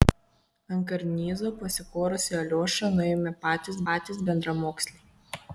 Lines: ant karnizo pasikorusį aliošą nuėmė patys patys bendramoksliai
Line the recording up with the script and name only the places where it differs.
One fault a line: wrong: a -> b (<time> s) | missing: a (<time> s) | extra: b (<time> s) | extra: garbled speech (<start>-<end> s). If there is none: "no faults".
no faults